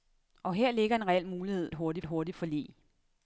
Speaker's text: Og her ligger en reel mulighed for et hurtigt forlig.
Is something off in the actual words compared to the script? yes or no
yes